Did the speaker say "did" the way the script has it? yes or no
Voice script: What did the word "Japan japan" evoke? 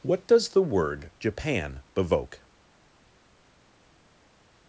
no